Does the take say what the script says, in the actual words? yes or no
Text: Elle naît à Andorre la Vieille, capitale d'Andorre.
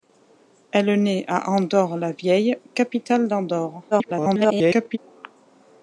no